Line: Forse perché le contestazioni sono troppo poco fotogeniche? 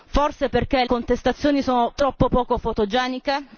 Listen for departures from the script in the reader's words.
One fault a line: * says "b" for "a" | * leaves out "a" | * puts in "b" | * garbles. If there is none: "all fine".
* leaves out "le"